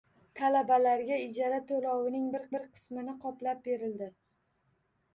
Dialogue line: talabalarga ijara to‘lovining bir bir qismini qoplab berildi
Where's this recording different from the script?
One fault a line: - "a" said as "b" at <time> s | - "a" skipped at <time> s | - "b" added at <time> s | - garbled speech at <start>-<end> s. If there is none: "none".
none